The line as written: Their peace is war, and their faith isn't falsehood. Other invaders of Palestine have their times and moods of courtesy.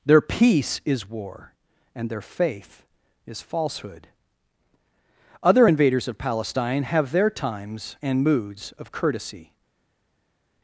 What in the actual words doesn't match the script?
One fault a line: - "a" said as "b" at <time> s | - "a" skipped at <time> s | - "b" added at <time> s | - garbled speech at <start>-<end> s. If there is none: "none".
- "isn't" said as "is" at 3.3 s